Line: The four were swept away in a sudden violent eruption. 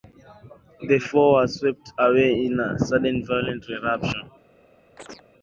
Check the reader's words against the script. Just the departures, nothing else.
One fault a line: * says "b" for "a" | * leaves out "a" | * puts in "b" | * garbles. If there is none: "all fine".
all fine